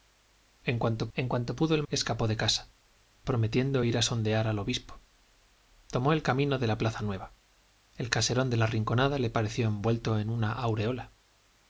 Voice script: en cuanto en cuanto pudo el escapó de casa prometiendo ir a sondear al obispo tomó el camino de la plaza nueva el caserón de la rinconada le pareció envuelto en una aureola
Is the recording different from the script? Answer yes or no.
no